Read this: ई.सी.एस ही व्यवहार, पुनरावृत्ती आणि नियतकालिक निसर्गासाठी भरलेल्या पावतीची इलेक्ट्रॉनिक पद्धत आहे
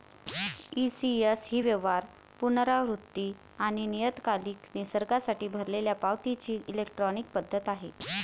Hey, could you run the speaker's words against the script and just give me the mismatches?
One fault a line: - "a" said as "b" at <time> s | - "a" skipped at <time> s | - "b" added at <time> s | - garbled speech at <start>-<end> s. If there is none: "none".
none